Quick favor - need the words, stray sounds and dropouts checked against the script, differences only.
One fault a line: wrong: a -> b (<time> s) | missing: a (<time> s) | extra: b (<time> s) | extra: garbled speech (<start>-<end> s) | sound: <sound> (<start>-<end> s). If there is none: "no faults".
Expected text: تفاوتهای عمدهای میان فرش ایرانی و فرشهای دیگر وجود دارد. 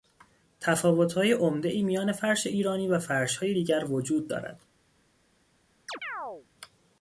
sound: chirp (5.9-6.5 s)